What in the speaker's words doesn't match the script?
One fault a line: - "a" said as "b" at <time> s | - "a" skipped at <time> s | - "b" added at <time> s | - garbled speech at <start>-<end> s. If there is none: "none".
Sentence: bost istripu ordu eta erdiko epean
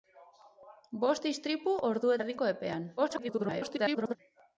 - "eta" skipped at 2.2 s
- garbled speech at 3.0-4.2 s